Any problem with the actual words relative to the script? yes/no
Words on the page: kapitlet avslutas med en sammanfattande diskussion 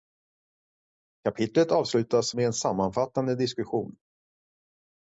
no